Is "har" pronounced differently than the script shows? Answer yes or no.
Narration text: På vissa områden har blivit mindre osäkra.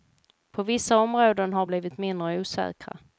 no